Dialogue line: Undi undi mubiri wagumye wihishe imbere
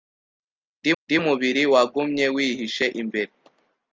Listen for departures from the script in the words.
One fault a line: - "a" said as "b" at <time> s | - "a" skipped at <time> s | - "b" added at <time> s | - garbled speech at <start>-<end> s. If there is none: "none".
none